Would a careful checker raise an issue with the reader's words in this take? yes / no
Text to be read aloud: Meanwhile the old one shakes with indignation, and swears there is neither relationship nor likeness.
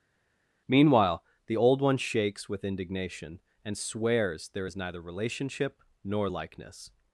no